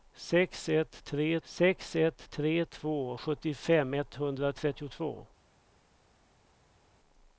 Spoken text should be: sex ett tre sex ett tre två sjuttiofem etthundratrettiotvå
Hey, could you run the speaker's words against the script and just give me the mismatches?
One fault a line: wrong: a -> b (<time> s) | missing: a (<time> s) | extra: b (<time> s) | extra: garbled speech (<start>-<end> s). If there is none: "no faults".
no faults